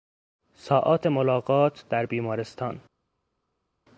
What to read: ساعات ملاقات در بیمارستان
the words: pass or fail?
pass